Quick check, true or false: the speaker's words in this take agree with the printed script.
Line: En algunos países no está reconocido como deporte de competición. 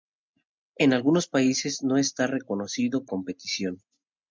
false